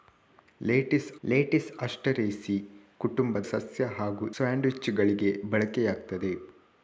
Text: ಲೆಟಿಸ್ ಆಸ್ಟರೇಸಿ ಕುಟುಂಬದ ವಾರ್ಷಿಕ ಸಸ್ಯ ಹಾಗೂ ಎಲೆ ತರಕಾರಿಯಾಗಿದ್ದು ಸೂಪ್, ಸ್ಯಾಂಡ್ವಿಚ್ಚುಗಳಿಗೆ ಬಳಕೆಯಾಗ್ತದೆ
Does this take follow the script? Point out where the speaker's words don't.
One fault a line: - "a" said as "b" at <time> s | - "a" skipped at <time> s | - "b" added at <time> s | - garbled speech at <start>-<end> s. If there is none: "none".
- "ಲೆಟಿಸ್" added at 1.2 s
- "ವಾರ್ಷಿಕ" skipped at 3.5 s
- "ಎಲೆ ತರಕಾರಿಯಾಗಿದ್ದು ಸೂಪ್" skipped at 4.3 s